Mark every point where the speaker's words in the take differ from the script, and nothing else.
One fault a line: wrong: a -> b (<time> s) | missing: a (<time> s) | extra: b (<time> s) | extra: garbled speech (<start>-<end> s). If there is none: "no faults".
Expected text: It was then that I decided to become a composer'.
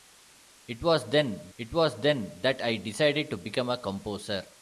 extra: it was then (1.6 s)